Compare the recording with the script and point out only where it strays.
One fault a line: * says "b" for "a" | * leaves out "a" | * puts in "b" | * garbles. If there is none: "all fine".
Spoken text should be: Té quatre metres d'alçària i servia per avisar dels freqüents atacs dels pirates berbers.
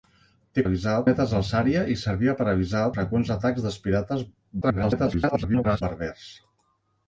* says "avisar" for "quatre"
* leaves out "dels"
* garbles